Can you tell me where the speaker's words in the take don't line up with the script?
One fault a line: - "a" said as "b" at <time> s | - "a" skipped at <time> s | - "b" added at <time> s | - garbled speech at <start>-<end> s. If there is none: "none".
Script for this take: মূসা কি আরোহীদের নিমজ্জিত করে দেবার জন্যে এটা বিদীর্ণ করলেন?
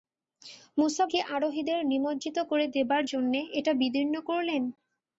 none